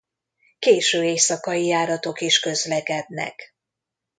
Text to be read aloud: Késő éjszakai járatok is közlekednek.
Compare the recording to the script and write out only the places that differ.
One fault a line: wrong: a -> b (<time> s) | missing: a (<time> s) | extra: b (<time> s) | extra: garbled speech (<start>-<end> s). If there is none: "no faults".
no faults